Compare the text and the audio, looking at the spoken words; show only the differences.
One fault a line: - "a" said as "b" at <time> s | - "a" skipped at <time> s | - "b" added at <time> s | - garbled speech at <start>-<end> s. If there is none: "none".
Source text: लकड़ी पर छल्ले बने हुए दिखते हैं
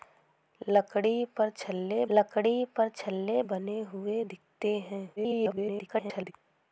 - "लकड़ी पर छल्ले" added at 2.1 s
- garbled speech at 5.2-6.3 s